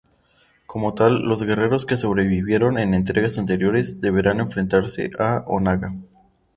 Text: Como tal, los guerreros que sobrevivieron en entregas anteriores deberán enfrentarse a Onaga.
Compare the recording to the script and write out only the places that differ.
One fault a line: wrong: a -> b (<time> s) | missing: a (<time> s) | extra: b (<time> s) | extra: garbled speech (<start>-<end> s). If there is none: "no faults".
no faults